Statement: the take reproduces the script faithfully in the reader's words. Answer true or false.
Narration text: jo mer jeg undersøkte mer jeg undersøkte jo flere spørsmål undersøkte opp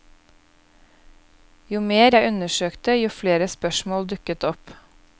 false